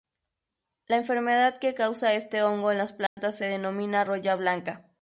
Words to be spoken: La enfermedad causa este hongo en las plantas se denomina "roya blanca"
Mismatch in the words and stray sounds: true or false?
true